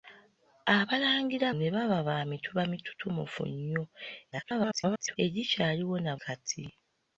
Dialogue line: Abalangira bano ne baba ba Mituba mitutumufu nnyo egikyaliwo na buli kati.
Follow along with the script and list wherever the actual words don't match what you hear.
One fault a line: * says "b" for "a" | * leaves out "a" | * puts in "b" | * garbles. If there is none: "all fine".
* leaves out "bano"
* garbles
* leaves out "buli"